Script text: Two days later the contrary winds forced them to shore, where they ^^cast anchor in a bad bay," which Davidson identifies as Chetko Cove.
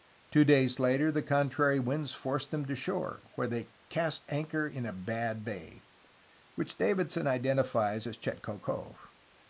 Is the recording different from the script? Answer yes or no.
no